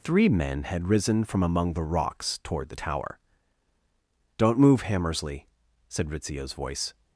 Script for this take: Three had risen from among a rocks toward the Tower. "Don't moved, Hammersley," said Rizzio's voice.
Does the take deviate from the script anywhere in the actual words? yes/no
yes